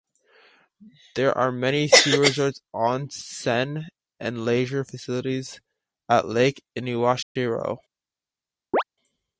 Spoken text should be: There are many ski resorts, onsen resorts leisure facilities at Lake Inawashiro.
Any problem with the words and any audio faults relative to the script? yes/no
yes